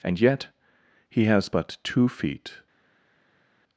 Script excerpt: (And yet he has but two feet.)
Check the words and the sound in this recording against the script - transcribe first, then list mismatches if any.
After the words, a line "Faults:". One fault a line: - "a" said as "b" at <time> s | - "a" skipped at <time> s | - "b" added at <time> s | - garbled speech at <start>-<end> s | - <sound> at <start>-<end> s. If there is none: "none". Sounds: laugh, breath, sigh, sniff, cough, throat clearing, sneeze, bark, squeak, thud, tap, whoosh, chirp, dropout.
(And yet he has but two feet.)
Faults:
none